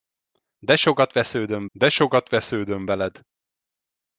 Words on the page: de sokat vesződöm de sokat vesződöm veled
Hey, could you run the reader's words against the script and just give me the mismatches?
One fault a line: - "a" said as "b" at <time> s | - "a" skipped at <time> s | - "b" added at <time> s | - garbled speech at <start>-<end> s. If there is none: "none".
none